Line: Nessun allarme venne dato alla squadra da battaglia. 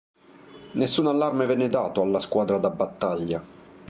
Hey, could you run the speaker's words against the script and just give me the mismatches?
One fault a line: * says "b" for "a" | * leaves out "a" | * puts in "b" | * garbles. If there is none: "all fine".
all fine